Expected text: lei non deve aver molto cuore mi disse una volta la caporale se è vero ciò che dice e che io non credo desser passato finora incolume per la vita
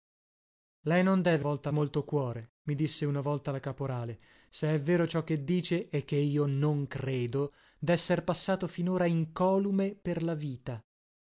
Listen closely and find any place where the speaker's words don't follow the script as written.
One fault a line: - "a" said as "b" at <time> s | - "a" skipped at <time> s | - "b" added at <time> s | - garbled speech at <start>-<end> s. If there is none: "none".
- "aver" said as "volta" at 1.4 s